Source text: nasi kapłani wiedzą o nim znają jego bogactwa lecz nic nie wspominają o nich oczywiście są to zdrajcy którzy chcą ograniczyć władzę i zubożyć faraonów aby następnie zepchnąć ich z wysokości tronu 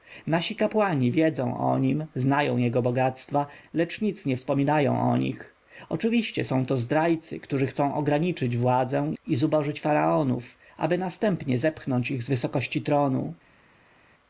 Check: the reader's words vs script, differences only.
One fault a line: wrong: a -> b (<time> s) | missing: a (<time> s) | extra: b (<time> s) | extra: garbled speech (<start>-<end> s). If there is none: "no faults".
no faults